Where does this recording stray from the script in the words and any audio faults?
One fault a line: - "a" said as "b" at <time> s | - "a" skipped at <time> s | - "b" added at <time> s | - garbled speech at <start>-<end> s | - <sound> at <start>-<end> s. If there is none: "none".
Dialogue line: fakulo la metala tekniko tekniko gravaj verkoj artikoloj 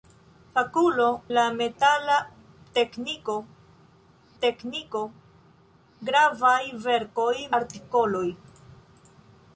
none